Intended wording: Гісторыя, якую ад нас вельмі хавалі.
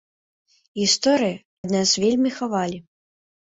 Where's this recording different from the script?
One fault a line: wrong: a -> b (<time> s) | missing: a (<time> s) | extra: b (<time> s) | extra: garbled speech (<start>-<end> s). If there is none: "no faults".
missing: якую (1.4 s)